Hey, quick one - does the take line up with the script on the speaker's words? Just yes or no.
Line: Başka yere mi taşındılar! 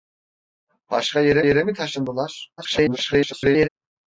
no